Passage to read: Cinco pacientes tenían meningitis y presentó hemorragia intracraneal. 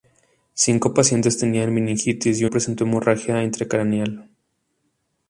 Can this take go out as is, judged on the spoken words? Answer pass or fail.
pass